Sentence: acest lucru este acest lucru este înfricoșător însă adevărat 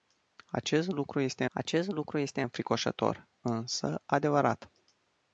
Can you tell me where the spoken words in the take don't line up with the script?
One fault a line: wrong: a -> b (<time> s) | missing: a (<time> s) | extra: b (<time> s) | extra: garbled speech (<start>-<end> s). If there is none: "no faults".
no faults